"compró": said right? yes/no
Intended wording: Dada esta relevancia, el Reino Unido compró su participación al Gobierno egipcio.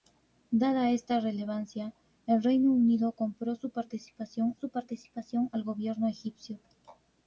yes